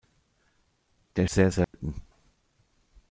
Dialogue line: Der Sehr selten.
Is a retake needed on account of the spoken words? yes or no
no